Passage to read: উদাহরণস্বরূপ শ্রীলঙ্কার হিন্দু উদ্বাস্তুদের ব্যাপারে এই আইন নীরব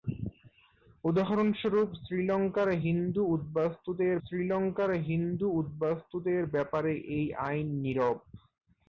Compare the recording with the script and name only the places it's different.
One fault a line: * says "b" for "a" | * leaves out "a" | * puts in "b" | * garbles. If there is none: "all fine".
* puts in "শ্রীলঙ্কার হিন্দু উদ্বাস্তুদের"